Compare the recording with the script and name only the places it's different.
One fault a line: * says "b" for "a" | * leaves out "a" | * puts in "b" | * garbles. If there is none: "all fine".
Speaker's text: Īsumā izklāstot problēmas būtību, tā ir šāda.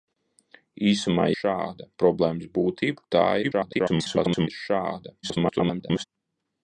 * says "šāda" for "izklāstot"
* garbles
* garbles